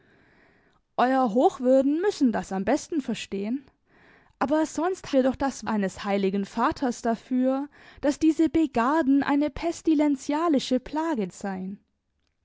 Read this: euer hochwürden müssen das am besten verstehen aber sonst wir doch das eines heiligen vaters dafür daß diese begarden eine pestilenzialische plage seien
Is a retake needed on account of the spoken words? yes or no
no